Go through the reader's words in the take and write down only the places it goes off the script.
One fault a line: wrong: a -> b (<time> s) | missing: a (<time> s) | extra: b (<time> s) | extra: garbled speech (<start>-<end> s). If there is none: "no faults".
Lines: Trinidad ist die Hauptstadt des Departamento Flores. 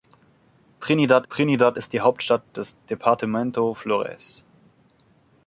extra: trinidad (1.3 s)